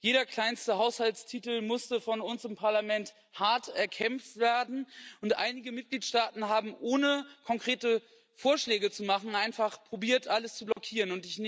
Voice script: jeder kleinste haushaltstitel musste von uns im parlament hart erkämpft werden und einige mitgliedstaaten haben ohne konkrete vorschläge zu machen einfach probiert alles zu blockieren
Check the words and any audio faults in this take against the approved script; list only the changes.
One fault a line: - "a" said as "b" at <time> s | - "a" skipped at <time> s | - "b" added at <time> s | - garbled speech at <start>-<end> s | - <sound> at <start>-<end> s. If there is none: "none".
- dropout at 10.7-10.8 s